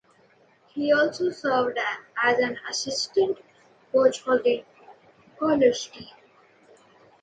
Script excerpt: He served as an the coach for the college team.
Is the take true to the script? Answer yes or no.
no